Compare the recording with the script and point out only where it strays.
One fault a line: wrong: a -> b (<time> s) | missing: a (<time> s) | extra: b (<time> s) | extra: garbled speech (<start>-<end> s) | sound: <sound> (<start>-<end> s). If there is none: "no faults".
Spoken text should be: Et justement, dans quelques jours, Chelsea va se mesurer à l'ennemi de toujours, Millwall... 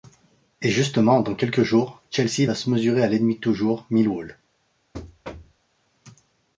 sound: thud (4.9-5.6 s)